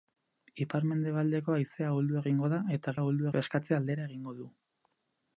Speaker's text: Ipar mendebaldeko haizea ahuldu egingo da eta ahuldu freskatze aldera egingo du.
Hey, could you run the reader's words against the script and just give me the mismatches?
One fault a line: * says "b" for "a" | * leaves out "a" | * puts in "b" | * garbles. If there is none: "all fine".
all fine